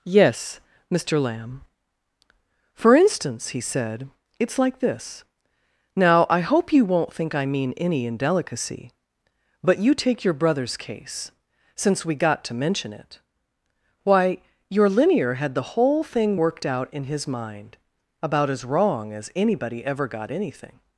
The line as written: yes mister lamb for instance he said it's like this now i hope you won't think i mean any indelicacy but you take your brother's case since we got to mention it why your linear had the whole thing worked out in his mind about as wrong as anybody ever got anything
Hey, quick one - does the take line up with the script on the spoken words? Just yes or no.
yes